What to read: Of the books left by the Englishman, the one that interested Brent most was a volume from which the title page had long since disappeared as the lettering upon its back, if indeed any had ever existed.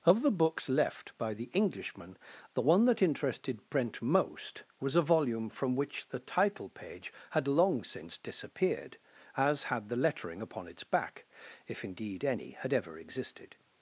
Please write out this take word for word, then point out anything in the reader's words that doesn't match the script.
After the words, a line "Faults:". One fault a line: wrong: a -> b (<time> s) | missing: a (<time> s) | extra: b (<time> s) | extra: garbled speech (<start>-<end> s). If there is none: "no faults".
Of the books left by the Englishman, the one that interested Brent most was a volume from which the title page had long since disappeared as had the lettering upon its back, if indeed any had ever existed.
Faults:
extra: had (9.6 s)